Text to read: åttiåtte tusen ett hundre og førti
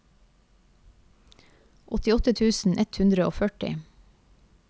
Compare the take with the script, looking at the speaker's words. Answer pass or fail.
pass